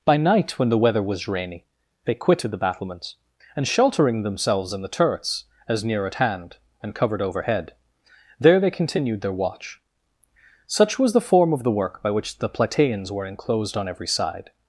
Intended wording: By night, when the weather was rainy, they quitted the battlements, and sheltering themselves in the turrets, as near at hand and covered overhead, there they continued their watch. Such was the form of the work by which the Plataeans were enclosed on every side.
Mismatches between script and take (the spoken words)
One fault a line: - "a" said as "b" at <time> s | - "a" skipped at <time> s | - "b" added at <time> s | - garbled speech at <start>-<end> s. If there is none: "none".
none